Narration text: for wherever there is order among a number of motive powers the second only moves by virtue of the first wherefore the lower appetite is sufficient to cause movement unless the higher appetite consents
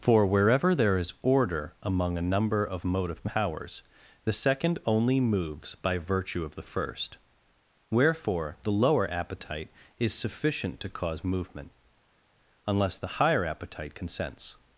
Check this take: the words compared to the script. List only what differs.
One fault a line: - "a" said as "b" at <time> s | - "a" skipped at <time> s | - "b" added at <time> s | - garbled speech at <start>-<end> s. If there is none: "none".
none